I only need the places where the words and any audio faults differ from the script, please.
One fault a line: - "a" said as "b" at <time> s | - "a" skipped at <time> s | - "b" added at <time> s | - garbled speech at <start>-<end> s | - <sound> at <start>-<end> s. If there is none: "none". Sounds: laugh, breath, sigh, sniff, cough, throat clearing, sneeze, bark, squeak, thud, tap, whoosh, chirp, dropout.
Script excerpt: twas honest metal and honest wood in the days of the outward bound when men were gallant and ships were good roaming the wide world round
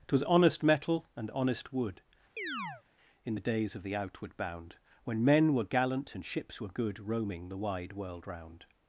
- chirp at 2.4-2.8 s